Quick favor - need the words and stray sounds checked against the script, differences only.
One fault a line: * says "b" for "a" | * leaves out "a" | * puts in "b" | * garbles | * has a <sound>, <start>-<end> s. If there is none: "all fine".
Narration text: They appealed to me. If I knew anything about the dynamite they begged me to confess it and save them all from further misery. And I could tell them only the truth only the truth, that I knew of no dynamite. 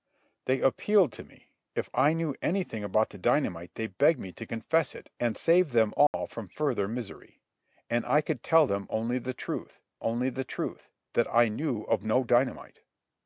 * has a dropout, 6.1-6.1 s